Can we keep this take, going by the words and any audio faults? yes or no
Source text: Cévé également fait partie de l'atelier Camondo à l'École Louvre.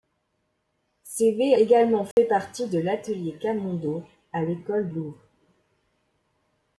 no